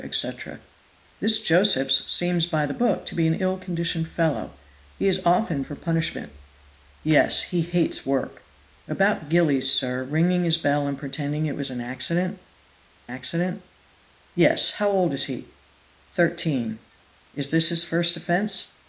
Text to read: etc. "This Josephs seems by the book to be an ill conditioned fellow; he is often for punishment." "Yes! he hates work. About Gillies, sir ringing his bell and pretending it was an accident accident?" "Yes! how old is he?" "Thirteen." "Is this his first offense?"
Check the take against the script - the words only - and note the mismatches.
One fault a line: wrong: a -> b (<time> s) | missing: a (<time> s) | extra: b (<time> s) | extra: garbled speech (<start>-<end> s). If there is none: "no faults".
no faults